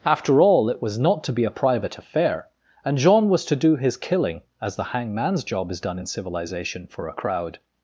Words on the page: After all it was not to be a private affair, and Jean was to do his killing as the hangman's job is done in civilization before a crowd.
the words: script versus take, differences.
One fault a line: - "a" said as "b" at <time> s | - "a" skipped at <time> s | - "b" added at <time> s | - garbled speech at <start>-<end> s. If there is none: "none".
- "before" said as "for" at 6.9 s